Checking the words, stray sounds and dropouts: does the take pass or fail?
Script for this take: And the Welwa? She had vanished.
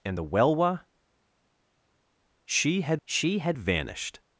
fail